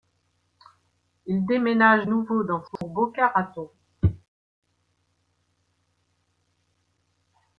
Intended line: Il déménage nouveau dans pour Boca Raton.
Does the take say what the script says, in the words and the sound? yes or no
no